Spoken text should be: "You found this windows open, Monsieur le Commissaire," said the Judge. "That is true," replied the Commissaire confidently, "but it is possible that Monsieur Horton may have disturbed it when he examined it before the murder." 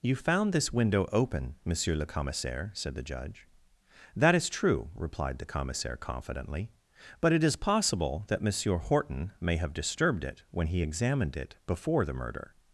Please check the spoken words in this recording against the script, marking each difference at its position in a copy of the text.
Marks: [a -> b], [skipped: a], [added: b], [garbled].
"You found this [windows -> window] open, Monsieur le Commissaire," said the Judge. "That is true," replied the Commissaire confidently, "but it is possible that Monsieur Horton may have disturbed it when he examined it before the murder."